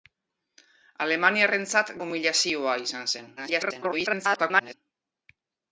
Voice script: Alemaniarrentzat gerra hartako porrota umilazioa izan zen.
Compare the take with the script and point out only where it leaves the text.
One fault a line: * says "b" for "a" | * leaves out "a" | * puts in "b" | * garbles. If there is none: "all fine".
* leaves out "gerra hartako porrota"
* garbles